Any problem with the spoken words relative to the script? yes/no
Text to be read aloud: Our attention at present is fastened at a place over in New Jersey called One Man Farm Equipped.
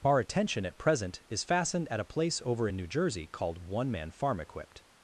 no